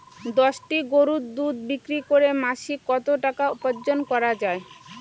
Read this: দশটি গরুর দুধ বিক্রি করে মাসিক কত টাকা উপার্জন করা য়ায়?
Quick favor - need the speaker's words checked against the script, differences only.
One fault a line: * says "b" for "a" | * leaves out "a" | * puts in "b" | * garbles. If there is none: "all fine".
all fine